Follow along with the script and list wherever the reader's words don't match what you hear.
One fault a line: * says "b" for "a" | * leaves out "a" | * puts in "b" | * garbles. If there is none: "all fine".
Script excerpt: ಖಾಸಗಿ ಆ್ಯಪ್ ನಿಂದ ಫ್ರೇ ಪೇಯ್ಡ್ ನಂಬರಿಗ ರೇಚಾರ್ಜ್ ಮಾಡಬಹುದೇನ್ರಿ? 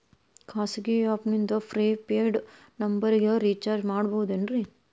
all fine